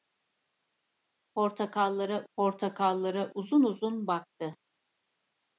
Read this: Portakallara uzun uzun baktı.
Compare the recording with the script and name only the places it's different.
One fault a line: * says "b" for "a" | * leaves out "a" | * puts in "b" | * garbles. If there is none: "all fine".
* puts in "portakallara"